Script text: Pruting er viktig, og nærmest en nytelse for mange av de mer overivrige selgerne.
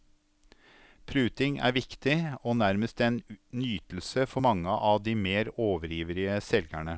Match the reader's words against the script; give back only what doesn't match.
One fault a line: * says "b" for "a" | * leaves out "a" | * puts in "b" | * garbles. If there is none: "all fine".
all fine